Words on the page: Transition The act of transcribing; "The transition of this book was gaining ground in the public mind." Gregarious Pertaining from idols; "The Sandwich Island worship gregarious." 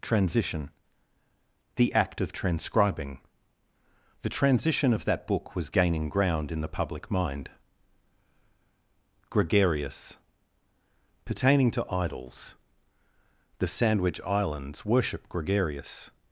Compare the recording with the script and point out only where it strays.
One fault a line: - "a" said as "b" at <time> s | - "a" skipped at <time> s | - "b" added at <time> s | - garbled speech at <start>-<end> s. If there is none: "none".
- "this" said as "that" at 5.0 s
- "from" said as "to" at 11.7 s
- "Island" said as "Islands" at 14.2 s